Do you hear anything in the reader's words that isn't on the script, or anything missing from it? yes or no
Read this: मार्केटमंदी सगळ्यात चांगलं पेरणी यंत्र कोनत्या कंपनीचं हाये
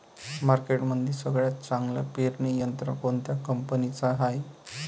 no